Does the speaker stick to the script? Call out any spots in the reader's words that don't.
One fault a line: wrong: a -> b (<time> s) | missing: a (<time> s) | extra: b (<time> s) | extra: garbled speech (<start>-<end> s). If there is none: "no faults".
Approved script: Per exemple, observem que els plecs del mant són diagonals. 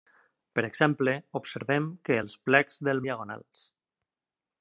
missing: mant són (3.0 s)